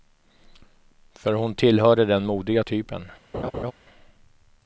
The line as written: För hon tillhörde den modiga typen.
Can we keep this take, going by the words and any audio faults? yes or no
no